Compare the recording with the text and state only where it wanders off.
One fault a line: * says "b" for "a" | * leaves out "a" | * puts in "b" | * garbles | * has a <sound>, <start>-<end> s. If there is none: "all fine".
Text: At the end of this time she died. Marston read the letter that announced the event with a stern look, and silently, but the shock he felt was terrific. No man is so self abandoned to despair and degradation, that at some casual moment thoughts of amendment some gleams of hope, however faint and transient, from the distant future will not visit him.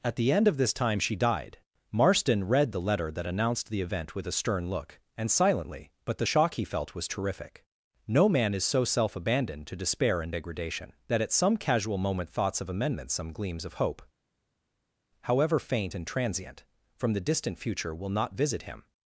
all fine